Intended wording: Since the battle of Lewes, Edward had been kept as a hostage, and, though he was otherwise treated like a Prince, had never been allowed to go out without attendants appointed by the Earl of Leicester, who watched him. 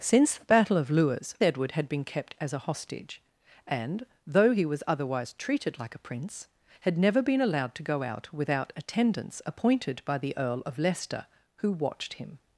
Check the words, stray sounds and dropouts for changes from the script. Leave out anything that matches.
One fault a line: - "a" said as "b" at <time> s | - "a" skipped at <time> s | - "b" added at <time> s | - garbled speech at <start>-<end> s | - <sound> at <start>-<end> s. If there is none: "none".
none